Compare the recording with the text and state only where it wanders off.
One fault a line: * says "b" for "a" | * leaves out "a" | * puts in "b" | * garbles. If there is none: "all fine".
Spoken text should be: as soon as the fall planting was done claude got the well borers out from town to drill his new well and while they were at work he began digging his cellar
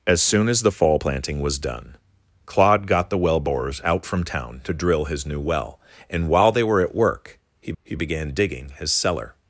* puts in "he"